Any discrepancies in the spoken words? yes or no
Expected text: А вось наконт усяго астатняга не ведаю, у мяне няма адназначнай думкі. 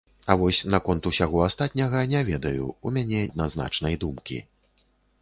yes